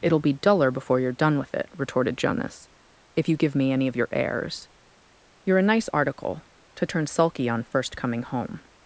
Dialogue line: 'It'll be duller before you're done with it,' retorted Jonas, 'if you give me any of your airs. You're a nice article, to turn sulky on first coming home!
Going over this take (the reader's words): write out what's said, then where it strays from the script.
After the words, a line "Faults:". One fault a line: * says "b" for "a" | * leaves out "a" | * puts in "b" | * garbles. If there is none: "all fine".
'It'll be duller before you're done with it,' retorted Jonas, 'if you give me any of your airs. You're a nice article, to turn sulky on first coming home!
Faults:
all fine